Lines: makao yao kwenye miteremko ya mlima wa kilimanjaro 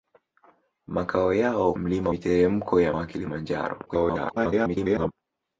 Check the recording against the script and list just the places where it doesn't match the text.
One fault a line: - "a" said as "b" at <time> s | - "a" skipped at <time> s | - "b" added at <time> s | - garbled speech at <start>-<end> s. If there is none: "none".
- "kwenye" said as "mlima" at 1.7 s
- "mlima" skipped at 2.9 s
- garbled speech at 3.9-5.1 s